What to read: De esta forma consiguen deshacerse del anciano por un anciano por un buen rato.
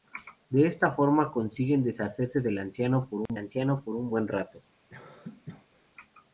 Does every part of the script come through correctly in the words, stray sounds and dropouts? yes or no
no